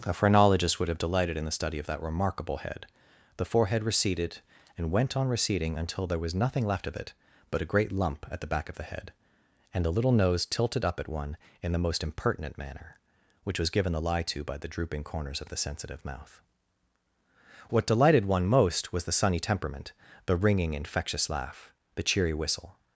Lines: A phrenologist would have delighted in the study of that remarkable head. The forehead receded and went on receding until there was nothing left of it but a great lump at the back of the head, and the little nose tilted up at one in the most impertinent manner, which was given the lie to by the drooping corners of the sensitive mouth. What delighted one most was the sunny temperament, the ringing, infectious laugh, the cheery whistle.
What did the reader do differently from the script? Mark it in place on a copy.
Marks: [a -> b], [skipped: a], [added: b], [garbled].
A phrenologist would have delighted in the study of that remarkable head. The forehead receded and went on receding until there was nothing left of it but a great lump at the back of the head, and the little nose tilted up at one in the most impertinent manner, which was given the lie to by the drooping corners of the sensitive mouth. What delighted one most was the sunny temperament, the ringing, infectious laugh, the cheery whistle.